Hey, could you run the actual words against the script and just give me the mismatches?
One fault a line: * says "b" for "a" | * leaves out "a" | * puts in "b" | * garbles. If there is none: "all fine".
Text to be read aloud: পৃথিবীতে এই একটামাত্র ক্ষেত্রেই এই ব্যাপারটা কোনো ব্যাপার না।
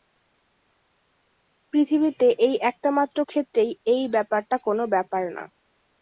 all fine